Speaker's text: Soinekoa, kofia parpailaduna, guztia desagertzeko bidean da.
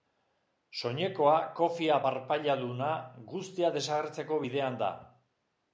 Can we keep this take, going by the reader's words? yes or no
yes